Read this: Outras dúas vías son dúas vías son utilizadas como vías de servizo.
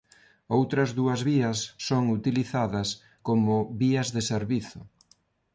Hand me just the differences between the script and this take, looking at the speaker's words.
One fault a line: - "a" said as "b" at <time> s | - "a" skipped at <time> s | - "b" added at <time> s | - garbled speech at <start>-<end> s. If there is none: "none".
- "dúas vías son" skipped at 2.0 s